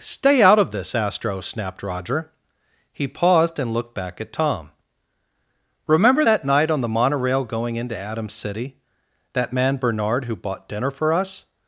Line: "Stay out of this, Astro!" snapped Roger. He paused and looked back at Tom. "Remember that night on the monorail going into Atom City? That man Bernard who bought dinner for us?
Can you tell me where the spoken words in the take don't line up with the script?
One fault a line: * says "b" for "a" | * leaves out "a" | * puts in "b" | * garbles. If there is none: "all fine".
all fine